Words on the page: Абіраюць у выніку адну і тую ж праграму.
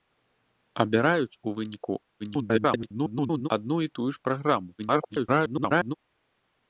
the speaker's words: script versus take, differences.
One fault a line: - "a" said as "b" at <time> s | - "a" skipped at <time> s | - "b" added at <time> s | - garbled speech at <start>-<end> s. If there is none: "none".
- garbled speech at 2.2-3.5 s
- garbled speech at 4.8-5.9 s